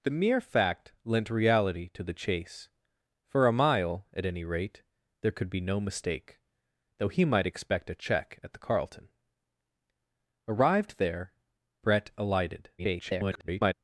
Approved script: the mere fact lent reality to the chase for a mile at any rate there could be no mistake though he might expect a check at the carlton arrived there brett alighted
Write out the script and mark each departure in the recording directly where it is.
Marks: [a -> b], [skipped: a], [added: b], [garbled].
the mere fact lent reality to the chase for a mile at any rate there could be no mistake though he might expect a check at the carlton arrived there brett alighted [garbled]